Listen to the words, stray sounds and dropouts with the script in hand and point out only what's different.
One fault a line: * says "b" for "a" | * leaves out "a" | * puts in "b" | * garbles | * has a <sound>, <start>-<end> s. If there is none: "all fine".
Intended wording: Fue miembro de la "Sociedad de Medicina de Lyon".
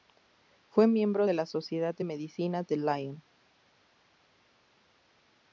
all fine